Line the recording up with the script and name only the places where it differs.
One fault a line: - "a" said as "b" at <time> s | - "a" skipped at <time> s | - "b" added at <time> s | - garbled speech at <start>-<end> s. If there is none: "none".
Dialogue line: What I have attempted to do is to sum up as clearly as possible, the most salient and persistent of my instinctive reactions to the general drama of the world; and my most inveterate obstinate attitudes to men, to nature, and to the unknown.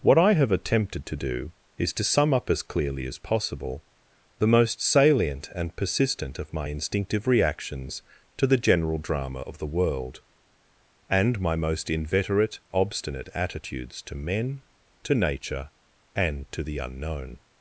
none